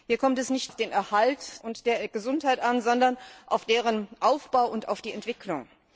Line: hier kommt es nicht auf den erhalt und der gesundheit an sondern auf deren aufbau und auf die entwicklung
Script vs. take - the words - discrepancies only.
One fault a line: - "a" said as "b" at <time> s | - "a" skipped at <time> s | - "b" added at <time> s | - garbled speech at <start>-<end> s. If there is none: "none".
none